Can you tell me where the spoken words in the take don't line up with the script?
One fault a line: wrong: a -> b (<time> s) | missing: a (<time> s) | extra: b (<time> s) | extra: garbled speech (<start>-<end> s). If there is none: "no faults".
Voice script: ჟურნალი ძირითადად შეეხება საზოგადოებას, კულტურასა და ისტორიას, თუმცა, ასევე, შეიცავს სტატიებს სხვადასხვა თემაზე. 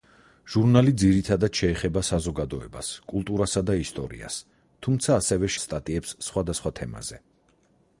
missing: შეიცავს (5.5 s)